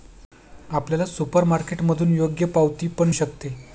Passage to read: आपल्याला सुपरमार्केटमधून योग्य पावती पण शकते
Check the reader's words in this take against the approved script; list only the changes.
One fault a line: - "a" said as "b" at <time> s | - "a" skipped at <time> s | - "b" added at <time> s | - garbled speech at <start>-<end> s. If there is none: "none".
none